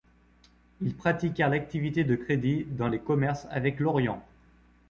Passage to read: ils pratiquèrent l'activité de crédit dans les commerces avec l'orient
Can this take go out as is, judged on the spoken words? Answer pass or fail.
pass